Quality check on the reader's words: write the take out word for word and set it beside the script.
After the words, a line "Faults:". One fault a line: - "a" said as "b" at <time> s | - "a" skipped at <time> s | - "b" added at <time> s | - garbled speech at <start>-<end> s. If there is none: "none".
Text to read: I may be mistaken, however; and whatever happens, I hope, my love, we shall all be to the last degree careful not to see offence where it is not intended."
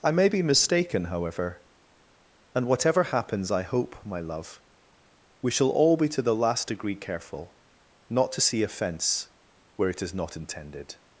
I may be mistaken, however; and whatever happens, I hope, my love, we shall all be to the last degree careful not to see offence where it is not intended."
Faults:
none